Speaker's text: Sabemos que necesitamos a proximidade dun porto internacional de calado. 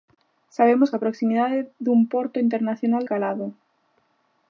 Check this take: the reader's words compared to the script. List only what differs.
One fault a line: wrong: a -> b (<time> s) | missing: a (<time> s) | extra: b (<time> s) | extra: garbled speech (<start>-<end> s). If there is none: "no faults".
missing: que necesitamos (0.9 s)
missing: de (3.0 s)